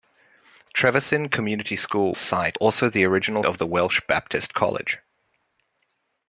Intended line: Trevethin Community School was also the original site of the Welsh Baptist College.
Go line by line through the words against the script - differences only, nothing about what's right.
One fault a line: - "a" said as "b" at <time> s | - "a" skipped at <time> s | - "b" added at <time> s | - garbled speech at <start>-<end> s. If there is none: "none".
- "was" said as "site" at 2.1 s
- "site" skipped at 3.4 s